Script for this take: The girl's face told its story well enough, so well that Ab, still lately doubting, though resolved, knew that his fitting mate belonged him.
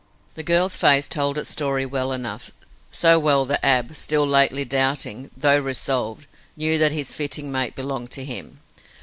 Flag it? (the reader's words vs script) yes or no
yes